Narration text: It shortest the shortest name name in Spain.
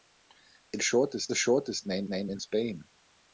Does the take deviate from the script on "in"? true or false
false